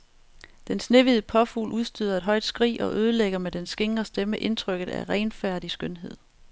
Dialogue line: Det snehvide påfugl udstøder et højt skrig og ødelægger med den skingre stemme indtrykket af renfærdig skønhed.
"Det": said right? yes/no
no